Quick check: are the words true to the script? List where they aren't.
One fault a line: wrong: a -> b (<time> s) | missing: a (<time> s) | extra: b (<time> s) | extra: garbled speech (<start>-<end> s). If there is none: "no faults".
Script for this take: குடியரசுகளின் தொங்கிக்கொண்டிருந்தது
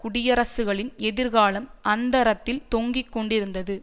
extra: எதிர்காலம் அந்தரத்தில் (1.0 s)